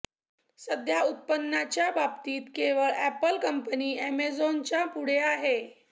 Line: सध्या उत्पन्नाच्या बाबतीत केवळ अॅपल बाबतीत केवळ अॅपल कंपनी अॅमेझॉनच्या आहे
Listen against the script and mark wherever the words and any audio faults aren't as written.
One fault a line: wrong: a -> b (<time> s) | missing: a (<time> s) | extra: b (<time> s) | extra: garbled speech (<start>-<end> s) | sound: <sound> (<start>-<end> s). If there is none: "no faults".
missing: बाबतीत केवळ अॅपल (3.4 s)
extra: पुढे (4.9 s)